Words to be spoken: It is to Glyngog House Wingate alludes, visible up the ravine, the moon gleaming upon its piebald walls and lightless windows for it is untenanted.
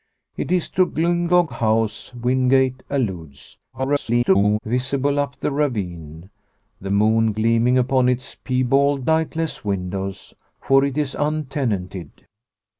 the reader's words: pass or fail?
fail